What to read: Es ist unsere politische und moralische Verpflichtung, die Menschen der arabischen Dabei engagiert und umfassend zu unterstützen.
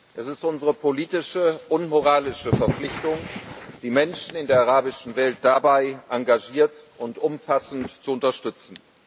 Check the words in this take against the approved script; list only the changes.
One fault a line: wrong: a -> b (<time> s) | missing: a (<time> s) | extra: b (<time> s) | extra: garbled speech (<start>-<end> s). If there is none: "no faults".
extra: in (4.3 s)
extra: Welt (5.2 s)